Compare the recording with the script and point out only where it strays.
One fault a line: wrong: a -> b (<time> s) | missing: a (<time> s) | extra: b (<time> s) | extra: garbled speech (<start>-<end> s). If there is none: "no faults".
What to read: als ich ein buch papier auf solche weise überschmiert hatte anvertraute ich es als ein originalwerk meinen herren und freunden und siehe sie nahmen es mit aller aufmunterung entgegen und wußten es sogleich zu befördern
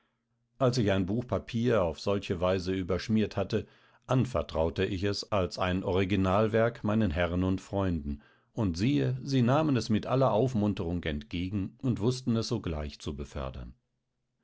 no faults